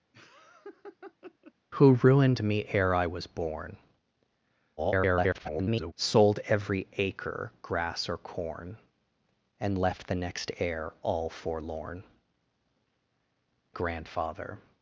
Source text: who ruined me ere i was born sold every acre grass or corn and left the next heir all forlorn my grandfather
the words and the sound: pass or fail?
fail